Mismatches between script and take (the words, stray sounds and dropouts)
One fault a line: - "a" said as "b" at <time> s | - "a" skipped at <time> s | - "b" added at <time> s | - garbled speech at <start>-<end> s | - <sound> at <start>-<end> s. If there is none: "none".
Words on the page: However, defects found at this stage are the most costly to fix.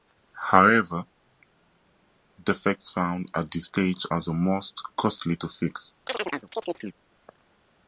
- chirp at 6.1-7.0 s